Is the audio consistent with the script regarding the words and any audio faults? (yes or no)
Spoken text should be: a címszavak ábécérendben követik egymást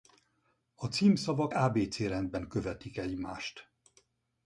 yes